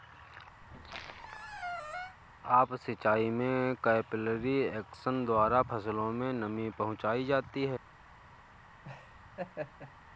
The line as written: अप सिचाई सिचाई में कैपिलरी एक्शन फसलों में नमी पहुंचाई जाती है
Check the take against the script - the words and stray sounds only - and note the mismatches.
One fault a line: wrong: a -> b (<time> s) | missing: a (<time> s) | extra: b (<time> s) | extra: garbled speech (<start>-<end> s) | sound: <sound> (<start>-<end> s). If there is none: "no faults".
sound: squeak (0.6-2.2 s)
missing: सिचाई (3.3 s)
extra: द्वारा (5.3 s)
sound: laugh (8.8-9.9 s)